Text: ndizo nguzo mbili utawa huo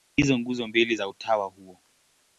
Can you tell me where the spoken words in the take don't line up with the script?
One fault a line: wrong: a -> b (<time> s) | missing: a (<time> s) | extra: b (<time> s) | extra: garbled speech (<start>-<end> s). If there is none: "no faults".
extra: za (0.9 s)